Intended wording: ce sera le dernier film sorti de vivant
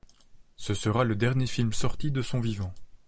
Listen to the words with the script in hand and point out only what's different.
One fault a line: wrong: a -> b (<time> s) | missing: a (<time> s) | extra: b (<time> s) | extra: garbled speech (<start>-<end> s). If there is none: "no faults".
extra: son (2.2 s)